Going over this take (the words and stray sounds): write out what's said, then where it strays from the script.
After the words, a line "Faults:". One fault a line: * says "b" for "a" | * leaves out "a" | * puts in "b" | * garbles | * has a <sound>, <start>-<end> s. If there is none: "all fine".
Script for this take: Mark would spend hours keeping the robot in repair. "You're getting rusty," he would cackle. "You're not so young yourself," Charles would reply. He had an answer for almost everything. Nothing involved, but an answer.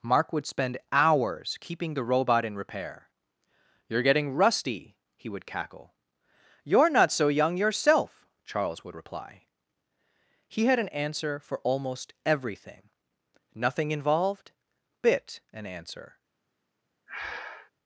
Mark would spend hours keeping the robot in repair. "You're getting rusty," he would cackle. "You're not so young yourself," Charles would reply. He had an answer for almost everything. Nothing involved, bit an answer.
Faults:
* says "bit" for "but"
* has a breath, 17.1-17.7 s